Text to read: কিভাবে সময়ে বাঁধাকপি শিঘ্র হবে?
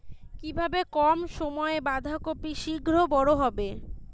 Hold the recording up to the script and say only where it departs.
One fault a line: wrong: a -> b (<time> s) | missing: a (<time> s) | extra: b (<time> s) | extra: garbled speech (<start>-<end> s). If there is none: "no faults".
extra: কম (0.9 s)
extra: বড় (3.1 s)